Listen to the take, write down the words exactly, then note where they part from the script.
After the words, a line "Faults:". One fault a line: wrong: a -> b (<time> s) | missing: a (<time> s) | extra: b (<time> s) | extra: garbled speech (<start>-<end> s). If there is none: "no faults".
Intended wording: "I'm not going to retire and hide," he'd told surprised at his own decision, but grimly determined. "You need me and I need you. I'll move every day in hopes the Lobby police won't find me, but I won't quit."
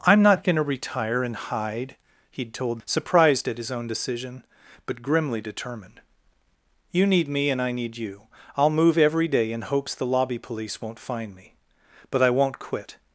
"I'm not going to retire and hide," he'd told surprised at his own decision, but grimly determined. "You need me and I need you. I'll move every day in hopes the Lobby police won't find me, but I won't quit."
Faults:
no faults